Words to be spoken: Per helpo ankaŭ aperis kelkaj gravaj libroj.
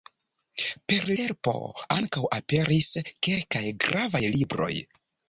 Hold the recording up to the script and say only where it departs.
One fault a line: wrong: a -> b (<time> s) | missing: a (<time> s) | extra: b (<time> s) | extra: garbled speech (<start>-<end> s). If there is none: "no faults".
no faults